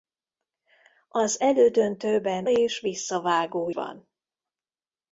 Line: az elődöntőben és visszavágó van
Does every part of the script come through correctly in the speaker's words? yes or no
yes